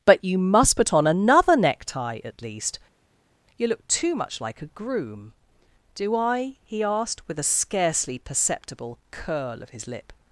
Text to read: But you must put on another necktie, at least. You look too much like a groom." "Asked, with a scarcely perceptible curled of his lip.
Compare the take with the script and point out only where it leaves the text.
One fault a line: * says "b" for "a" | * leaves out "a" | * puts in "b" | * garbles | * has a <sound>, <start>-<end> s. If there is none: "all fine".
* puts in "Do I he"
* says "curl" for "curled"